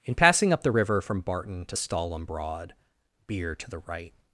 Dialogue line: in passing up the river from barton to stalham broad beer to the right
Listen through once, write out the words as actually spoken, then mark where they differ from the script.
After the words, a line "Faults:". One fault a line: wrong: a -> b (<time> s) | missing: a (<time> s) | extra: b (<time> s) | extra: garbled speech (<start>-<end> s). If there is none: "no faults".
in passing up the river from barton to stalham broad beer to the right
Faults:
no faults